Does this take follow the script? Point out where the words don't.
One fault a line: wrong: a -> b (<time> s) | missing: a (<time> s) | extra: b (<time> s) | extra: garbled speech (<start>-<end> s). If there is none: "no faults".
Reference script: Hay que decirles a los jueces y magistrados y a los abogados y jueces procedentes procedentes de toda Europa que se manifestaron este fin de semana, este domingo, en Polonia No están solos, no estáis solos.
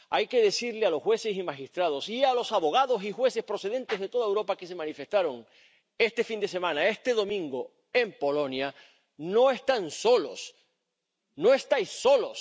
missing: procedentes (4.0 s)